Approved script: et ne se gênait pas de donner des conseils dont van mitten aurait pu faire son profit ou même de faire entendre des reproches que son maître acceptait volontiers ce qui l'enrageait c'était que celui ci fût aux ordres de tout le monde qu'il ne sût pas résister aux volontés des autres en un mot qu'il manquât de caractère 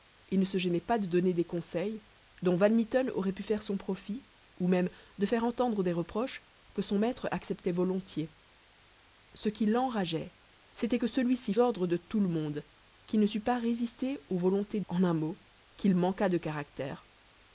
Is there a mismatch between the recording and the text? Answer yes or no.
yes